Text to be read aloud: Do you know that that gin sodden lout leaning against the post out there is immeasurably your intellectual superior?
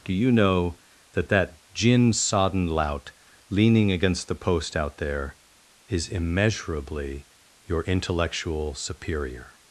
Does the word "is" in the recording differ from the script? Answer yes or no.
no